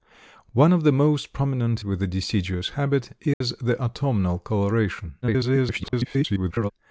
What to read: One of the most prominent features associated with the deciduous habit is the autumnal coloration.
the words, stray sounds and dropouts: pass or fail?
fail